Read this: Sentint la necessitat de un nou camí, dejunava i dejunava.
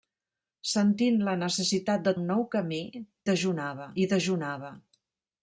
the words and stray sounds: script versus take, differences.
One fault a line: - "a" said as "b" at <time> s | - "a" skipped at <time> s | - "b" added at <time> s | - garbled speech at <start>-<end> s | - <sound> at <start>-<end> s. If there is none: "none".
none